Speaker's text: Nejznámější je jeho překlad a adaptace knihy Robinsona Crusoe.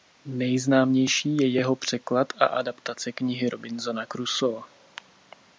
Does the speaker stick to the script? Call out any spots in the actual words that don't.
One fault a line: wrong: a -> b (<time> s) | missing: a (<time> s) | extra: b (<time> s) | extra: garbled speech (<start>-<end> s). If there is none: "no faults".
no faults